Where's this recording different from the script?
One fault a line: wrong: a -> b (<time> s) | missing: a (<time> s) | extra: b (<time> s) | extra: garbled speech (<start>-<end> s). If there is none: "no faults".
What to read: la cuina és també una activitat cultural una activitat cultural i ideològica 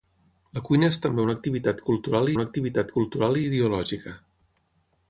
no faults